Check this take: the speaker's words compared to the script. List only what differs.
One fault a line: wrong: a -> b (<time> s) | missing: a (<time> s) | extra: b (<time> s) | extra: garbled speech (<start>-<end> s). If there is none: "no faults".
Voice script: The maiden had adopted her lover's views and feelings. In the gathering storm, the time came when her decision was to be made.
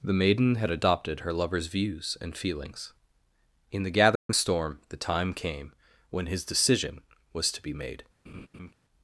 wrong: her -> his (6.3 s)